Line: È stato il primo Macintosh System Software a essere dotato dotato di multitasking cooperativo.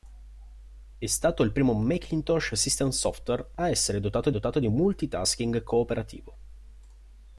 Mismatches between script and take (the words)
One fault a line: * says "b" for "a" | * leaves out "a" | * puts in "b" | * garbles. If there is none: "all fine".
all fine